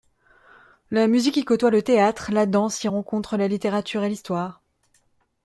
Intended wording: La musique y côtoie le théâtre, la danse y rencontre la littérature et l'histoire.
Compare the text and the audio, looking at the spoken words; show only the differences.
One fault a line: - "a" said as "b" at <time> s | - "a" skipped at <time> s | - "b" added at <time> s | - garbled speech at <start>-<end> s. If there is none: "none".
none